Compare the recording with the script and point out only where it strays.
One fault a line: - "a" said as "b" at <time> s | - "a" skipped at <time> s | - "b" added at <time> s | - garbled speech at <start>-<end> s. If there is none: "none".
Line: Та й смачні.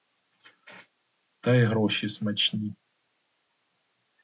- "гроші" added at 1.6 s